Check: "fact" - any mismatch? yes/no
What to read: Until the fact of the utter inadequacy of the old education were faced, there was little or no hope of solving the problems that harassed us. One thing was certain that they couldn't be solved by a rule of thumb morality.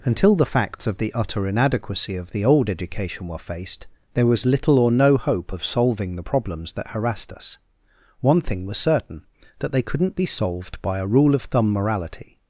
yes